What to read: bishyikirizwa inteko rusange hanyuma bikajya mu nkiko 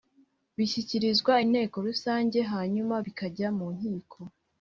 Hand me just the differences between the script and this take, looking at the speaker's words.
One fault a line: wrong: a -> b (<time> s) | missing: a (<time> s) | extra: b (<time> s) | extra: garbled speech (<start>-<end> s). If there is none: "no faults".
no faults